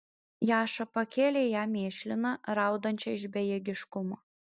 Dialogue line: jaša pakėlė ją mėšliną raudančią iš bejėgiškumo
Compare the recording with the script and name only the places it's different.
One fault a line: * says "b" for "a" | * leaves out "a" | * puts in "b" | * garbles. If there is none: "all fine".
all fine